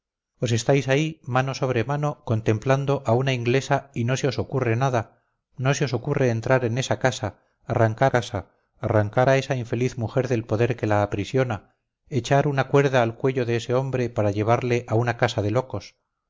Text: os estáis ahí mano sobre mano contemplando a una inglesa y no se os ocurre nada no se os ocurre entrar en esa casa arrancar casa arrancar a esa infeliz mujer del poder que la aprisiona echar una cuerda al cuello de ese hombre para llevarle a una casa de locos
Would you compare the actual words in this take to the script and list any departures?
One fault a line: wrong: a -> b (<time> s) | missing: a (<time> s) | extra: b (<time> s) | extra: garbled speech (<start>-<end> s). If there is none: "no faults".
no faults